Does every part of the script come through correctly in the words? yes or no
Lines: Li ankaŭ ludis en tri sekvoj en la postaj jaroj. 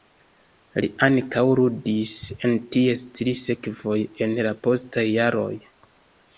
no